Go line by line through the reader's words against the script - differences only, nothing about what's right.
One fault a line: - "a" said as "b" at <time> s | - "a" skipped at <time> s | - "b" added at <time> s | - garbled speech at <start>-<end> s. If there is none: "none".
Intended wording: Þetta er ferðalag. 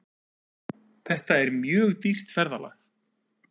- "mjög dýrt" added at 1.6 s